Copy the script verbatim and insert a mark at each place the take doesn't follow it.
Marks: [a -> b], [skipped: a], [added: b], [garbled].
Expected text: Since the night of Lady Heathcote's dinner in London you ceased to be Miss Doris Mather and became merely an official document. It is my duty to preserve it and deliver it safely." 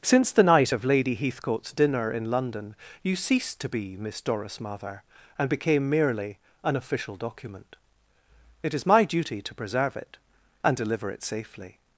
Since the night of Lady Heathcote's dinner in London you ceased to be Miss Doris Mather and became merely an official document. It is my duty to preserve it and deliver it safely."